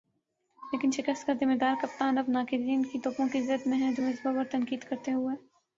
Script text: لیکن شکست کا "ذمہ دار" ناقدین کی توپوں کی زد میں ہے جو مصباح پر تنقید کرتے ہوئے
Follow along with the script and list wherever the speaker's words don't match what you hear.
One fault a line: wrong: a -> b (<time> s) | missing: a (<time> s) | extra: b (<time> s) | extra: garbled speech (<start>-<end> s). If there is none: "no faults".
extra: کپتان اب (1.8 s)